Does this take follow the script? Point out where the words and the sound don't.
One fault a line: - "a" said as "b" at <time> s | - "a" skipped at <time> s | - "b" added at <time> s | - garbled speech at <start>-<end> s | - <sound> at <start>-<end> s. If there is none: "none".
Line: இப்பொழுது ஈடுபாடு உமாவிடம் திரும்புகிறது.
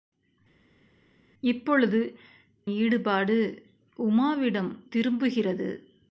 none